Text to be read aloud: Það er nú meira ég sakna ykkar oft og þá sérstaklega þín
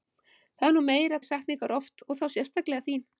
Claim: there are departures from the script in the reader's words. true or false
false